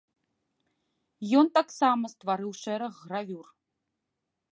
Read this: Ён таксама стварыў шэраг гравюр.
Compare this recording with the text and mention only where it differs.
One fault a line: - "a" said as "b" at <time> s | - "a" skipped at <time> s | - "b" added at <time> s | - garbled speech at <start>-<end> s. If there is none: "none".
none